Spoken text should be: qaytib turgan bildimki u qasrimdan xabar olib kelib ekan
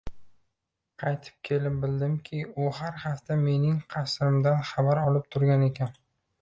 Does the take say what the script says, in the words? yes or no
no